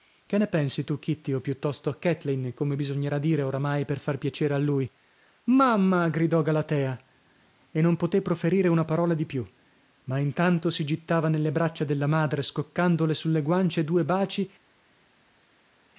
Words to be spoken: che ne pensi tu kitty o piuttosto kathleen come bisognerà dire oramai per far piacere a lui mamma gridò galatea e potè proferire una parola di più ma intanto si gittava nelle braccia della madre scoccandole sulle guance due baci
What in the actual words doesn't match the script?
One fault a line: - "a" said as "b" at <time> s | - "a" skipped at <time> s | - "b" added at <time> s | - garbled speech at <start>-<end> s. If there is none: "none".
- "non" added at 7.8 s